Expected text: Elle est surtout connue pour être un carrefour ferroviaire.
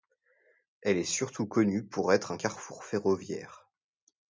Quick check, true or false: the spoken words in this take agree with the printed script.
true